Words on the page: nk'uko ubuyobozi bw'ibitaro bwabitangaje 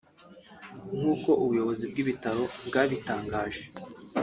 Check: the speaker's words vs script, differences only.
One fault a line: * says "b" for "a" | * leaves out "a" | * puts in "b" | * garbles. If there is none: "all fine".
all fine